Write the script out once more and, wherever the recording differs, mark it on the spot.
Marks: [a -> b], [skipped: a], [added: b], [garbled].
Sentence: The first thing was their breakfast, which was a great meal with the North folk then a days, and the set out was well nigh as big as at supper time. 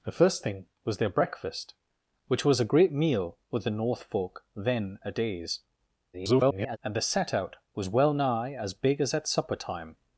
The first thing was their breakfast, which was a great meal with the North folk then a days, [garbled] and the set out was well nigh as big as at supper time.